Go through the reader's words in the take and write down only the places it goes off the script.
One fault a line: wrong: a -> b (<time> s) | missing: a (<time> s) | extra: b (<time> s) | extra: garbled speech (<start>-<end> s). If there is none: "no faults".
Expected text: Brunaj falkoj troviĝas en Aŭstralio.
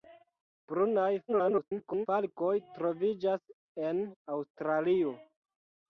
extra: garbled speech (1.3-2.1 s)